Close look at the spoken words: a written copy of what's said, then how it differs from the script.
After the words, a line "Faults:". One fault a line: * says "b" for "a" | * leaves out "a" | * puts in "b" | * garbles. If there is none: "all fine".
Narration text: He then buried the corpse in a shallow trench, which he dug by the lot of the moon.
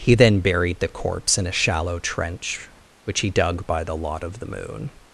He then buried the corpse in a shallow trench, which he dug by the lot of the moon.
Faults:
all fine